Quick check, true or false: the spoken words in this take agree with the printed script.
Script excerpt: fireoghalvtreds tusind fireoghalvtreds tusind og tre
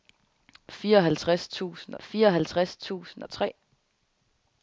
true